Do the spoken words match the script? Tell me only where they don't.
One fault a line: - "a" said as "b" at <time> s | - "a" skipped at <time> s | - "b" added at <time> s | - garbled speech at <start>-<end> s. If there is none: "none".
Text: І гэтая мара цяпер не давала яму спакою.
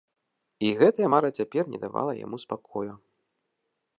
none